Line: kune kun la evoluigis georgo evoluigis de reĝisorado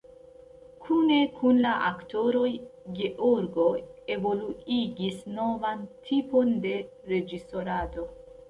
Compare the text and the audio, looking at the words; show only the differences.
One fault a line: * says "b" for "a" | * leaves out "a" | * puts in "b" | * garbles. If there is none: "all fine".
* says "aktoroj" for "evoluigis"
* puts in "novan tipon"